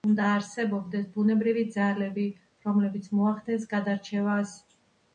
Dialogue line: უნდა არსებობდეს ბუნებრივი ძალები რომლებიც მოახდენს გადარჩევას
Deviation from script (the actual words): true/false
false